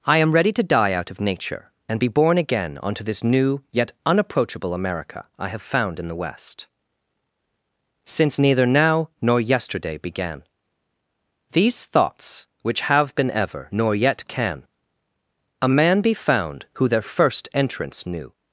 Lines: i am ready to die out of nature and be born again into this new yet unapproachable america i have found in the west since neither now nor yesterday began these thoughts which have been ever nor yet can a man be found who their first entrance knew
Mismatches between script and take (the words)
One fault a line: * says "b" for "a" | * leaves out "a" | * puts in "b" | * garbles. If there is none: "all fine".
* says "onto" for "into"